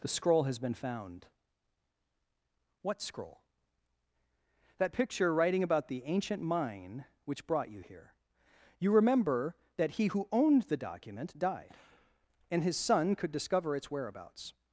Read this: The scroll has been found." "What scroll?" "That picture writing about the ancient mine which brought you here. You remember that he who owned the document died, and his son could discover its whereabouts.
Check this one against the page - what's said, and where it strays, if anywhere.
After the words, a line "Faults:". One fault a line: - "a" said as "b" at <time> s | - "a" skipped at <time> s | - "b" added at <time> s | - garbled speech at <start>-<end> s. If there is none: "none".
The scroll has been found." "What scroll?" "That picture writing about the ancient mine which brought you here. You remember that he who owned the document died, and his son could discover its whereabouts.
Faults:
none